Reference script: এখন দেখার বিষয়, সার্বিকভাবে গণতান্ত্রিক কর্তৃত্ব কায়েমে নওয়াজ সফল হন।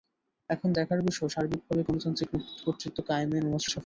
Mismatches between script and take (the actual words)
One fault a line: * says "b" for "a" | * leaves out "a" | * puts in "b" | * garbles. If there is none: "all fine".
all fine